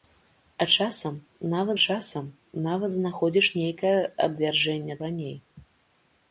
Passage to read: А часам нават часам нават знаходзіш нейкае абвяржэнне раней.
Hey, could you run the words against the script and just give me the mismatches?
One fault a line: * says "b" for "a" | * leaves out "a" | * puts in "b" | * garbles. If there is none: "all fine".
all fine